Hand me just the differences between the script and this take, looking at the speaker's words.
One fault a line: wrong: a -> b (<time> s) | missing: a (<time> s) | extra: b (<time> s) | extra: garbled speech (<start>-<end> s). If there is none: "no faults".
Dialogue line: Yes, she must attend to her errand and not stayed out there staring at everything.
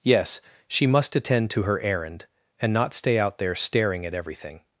wrong: stayed -> stay (2.9 s)